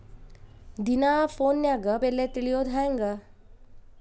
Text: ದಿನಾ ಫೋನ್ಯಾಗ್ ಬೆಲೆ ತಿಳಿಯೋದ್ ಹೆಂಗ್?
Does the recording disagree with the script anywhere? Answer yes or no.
no